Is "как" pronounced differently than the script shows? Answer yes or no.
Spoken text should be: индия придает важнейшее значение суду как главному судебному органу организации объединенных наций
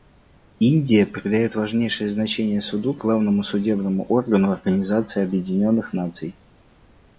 yes